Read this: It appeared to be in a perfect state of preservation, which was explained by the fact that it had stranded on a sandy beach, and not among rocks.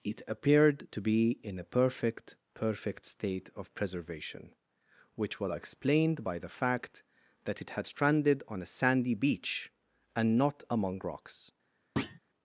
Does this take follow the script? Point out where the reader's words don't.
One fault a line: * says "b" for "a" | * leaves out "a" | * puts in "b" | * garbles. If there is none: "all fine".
* puts in "perfect"